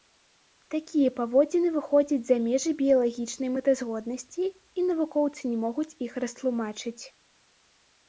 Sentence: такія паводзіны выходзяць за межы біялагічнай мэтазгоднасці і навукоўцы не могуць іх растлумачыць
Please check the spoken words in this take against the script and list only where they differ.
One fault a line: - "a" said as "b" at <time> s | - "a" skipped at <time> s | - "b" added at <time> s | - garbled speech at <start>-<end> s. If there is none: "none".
none